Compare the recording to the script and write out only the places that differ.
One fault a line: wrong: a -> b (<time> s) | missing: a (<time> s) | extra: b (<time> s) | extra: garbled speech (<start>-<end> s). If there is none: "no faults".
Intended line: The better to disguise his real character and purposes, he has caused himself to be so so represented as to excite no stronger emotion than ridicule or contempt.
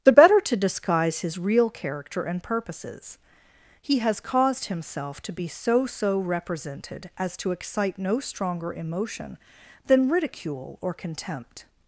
no faults